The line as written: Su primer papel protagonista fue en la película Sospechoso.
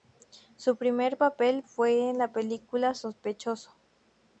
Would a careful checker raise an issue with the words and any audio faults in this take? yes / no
yes